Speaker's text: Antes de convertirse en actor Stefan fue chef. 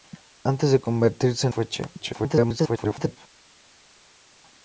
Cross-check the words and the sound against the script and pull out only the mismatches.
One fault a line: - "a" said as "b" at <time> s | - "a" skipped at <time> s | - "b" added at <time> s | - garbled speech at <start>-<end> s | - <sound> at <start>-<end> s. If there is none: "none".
- "actor Stefan" skipped at 1.5 s
- garbled speech at 2.0-3.2 s